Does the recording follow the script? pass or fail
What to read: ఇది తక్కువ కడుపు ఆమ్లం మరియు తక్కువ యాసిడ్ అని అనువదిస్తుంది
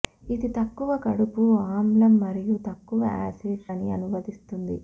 pass